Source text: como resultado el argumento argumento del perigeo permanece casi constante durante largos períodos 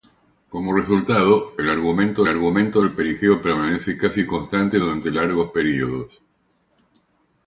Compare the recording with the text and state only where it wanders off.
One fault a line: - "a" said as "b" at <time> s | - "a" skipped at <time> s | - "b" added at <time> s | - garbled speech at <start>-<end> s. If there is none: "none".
none